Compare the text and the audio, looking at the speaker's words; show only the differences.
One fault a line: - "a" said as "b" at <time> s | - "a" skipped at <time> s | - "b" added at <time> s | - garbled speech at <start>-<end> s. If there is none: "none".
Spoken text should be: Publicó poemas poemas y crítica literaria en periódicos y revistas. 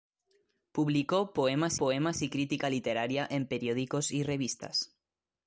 none